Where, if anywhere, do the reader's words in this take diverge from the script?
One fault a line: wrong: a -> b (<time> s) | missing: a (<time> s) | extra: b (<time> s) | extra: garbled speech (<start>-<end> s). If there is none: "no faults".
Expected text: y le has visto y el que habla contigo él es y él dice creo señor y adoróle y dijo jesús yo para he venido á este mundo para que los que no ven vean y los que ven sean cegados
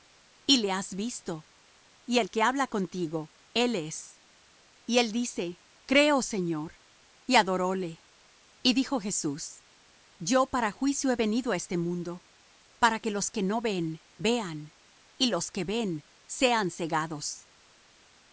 extra: juicio (10.7 s)